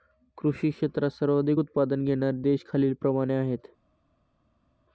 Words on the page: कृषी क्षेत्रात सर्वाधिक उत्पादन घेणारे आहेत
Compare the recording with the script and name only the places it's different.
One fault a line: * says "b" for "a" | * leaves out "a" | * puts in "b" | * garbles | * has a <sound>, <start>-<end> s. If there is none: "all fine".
* puts in "देश खालीलप्रमाणे"